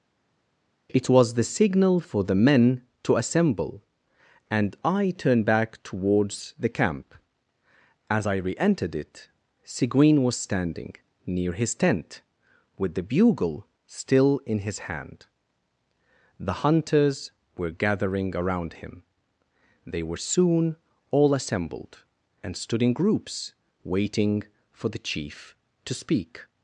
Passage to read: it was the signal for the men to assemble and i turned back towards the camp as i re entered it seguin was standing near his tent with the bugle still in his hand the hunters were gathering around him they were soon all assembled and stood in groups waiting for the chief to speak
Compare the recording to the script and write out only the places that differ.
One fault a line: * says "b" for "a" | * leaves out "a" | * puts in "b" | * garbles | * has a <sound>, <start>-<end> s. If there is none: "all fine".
all fine